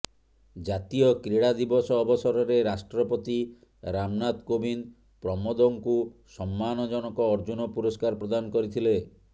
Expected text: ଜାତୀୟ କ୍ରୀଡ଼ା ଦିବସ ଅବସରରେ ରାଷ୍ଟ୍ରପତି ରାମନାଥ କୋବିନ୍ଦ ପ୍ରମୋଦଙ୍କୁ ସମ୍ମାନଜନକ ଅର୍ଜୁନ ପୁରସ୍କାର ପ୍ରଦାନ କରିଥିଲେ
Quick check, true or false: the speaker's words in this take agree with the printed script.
true